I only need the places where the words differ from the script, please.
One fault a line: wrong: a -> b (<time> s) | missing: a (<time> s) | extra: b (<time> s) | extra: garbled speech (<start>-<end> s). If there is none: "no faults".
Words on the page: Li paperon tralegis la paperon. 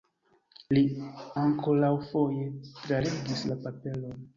wrong: paperon -> ankoraŭfoje (1.4 s)